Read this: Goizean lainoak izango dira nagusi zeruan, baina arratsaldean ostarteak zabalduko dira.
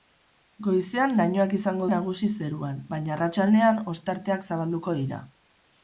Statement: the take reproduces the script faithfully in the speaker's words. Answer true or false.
false